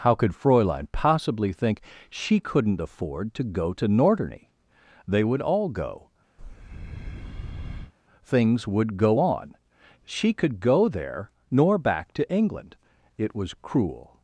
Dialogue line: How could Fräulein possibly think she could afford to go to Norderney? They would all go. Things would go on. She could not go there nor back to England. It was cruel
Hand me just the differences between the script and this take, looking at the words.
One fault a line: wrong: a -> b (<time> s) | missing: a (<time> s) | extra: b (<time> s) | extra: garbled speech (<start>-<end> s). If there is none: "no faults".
wrong: could -> couldn't (2.4 s)
missing: not (10.6 s)